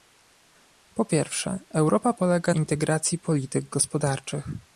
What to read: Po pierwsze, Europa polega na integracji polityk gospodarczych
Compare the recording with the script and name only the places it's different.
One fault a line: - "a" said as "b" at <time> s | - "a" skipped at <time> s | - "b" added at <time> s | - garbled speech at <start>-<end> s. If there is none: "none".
- "na" skipped at 2.5 s